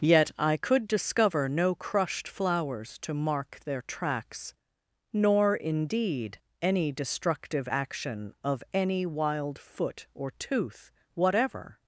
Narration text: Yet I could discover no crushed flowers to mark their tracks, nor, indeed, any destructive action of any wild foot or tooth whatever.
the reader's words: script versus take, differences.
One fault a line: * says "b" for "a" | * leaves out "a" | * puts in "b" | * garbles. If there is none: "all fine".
all fine